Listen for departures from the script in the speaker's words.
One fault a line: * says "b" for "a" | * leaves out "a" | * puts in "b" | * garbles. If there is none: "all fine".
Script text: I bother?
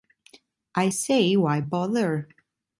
* puts in "say why"